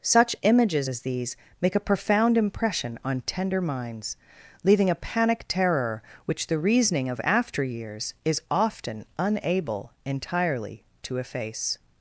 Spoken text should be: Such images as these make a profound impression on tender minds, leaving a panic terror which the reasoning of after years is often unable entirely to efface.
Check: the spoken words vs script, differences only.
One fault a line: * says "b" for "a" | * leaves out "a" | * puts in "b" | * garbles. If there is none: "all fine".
all fine